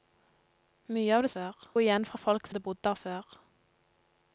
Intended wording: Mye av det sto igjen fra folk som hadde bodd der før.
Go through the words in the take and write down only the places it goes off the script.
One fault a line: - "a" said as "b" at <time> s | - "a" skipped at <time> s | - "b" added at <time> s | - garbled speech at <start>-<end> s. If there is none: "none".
- "sto" said as "før" at 1.3 s
- "som" skipped at 2.5 s